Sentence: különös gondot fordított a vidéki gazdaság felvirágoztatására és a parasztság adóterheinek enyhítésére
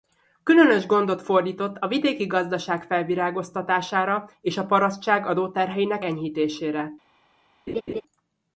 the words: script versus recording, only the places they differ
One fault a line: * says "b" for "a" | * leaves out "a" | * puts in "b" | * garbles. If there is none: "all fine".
all fine